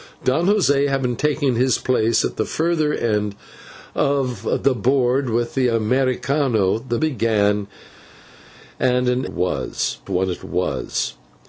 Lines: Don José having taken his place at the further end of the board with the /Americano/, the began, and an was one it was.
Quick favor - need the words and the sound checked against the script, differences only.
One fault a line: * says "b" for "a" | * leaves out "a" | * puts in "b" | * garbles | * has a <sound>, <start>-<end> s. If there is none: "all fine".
all fine